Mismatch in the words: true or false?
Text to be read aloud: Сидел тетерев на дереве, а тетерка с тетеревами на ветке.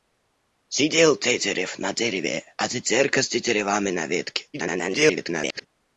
true